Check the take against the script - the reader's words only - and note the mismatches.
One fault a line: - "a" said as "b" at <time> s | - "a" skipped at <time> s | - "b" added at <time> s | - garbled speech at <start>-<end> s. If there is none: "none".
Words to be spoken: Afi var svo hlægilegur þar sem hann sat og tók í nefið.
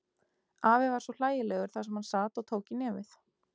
none